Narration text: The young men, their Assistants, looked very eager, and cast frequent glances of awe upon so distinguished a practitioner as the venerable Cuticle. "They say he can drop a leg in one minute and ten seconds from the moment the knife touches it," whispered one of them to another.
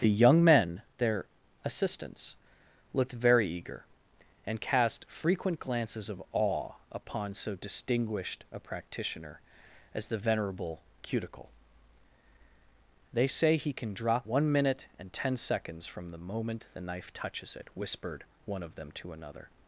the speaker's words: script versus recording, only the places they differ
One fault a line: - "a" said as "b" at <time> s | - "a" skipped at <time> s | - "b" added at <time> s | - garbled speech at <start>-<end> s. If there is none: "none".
- "a leg in" skipped at 14.3 s